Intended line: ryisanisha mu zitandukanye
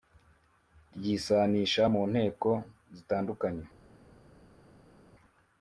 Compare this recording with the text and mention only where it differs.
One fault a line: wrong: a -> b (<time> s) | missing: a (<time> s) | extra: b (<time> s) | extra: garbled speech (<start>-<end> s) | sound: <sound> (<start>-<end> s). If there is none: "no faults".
extra: nteko (2.1 s)